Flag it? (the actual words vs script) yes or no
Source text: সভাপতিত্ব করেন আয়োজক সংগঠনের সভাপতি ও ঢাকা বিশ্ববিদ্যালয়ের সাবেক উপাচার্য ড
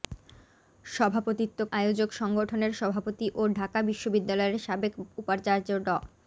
yes